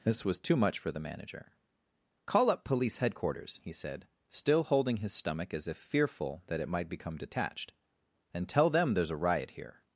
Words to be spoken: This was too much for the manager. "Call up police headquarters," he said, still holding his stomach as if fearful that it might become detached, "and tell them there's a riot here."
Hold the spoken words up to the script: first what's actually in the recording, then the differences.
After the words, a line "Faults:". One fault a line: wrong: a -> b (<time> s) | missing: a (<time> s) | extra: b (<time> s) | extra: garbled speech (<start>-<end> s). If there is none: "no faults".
This was too much for the manager. "Call up police headquarters," he said, still holding his stomach as if fearful that it might become detached, "and tell them there's a riot here."
Faults:
no faults